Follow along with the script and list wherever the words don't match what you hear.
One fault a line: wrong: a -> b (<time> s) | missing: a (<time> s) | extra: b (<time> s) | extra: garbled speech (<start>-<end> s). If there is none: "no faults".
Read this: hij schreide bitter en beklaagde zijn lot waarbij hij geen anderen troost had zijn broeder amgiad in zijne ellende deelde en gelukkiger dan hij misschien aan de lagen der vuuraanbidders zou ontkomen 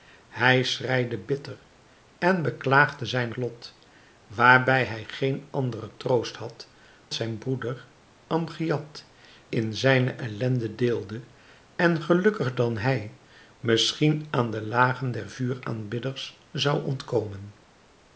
no faults